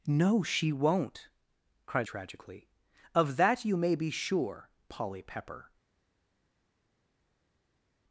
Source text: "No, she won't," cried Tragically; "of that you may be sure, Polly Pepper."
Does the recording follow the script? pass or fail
pass